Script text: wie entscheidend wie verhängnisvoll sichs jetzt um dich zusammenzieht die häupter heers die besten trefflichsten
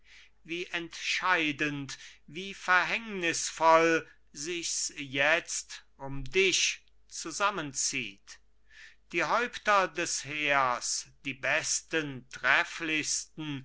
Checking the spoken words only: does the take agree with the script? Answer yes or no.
no